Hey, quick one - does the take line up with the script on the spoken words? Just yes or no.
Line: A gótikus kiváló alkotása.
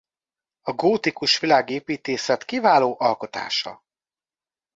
no